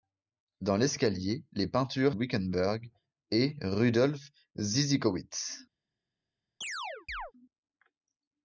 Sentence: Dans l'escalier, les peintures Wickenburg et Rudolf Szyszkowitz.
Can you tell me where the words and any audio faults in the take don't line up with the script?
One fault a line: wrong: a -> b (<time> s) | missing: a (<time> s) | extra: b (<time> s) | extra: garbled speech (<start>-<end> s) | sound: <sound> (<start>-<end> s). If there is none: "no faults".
sound: chirp (6.6-7.3 s)